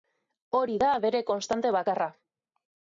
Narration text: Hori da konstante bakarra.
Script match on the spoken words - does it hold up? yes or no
no